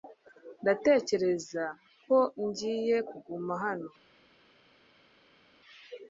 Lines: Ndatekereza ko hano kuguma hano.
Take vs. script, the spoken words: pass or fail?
fail